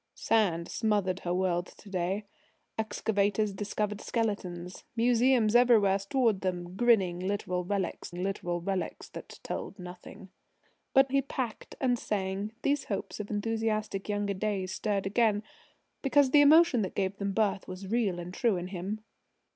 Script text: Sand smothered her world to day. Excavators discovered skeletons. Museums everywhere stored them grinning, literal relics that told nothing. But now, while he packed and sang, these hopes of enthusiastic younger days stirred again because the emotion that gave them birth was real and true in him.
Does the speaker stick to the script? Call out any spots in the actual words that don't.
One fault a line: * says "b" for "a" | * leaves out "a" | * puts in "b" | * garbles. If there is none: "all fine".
* puts in "literal relics"
* leaves out "now while"